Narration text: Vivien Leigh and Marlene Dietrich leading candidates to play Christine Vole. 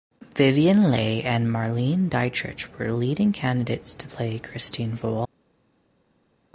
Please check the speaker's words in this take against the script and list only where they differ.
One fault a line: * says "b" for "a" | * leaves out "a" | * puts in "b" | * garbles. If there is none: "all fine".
* puts in "were"